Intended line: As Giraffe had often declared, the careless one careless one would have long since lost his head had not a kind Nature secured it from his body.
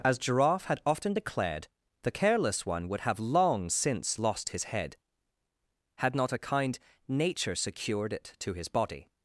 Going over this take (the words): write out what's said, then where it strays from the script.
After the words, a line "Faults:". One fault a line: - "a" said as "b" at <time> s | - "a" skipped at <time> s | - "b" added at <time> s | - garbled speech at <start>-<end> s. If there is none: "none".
As Giraffe had often declared, the careless one would have long since lost his head had not a kind Nature secured it to his body.
Faults:
- "careless one" skipped at 2.9 s
- "from" said as "to" at 8.4 s